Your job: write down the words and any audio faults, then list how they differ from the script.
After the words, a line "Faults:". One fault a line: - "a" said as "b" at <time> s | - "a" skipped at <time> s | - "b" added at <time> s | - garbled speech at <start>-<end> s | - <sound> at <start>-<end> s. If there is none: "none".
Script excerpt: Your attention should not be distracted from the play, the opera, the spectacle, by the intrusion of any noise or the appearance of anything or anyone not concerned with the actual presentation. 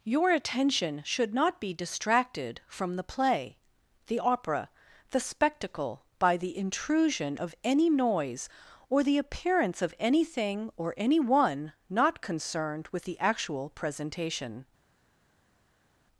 Your attention should not be distracted from the play, the opera, the spectacle, by the intrusion of any noise or the appearance of anything or anyone not concerned with the actual presentation.
Faults:
none